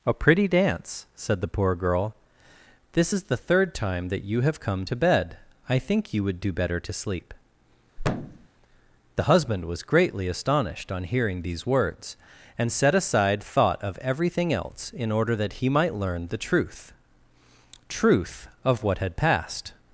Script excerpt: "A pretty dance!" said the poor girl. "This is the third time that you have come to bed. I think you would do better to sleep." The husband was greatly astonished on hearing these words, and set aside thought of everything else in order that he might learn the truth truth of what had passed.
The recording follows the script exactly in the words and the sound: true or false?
false